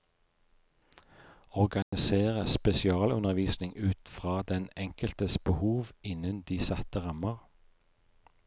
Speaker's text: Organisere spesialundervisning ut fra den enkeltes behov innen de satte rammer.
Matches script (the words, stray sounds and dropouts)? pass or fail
fail